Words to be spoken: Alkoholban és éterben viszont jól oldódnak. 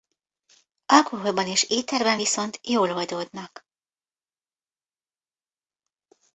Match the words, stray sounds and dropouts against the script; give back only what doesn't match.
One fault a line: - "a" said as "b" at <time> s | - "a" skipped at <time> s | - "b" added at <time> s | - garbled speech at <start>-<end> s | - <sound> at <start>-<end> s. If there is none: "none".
none